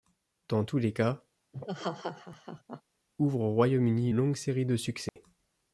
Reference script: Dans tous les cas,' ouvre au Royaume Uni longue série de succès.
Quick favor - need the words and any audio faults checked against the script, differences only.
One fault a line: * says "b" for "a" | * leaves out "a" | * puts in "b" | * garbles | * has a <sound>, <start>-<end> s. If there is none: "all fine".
* has a laugh, 1.5-2.8 s
* has a dropout, 5.1-5.2 s